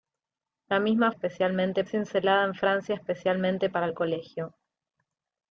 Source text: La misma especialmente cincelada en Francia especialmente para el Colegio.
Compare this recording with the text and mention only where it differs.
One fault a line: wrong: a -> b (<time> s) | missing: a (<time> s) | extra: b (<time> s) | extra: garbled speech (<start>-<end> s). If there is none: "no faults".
no faults